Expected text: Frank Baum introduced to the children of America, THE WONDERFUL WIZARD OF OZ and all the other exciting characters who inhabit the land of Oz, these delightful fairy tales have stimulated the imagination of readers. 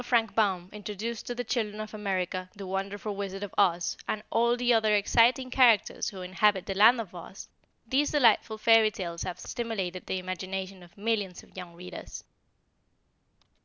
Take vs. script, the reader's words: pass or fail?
fail